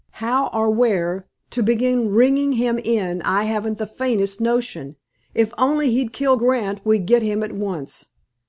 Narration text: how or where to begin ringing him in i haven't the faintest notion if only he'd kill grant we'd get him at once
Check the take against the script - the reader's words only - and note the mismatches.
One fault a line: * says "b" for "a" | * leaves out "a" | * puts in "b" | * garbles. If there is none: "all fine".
all fine